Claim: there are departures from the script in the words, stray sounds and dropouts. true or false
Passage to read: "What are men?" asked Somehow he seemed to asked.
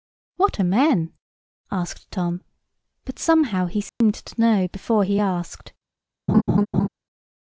true